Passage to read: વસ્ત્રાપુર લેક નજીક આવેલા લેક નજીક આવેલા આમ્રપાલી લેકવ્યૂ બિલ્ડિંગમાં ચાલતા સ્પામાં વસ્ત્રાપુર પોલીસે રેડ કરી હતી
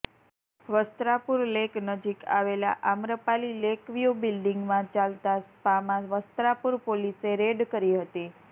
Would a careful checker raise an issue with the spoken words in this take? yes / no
yes